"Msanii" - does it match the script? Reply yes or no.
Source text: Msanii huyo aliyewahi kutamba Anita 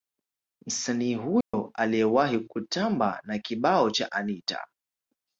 yes